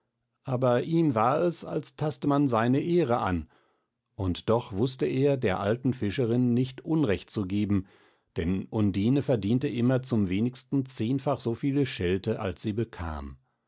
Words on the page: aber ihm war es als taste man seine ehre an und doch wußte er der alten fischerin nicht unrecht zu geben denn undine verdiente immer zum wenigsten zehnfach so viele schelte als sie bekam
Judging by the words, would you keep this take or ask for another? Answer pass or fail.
pass